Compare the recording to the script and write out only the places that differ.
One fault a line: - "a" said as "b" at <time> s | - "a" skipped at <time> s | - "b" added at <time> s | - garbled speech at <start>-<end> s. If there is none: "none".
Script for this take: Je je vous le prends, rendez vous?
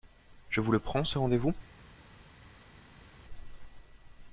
- "je" skipped at 0.6 s
- "ce" added at 1.1 s